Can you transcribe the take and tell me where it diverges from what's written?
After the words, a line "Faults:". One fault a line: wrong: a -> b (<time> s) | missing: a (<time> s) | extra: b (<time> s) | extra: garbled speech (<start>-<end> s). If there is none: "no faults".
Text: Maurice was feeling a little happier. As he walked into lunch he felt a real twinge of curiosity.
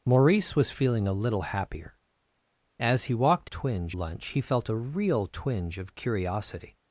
Maurice was feeling a little happier. As he walked twinge lunch he felt a real twinge of curiosity.
Faults:
wrong: into -> twinge (3.4 s)